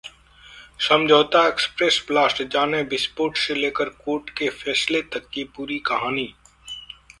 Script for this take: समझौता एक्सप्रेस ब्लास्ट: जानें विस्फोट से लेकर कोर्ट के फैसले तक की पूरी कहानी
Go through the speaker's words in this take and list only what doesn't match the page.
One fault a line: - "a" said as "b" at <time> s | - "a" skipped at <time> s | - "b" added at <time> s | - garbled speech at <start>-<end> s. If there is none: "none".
none